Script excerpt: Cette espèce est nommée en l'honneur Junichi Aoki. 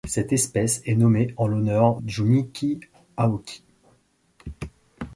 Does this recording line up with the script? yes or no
yes